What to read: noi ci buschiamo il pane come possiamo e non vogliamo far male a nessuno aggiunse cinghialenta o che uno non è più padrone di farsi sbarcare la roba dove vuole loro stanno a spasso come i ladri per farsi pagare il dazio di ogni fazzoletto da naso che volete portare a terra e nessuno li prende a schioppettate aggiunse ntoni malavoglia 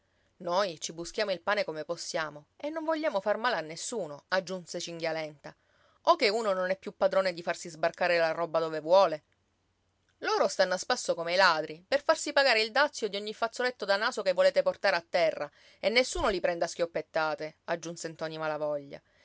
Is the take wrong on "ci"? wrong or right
right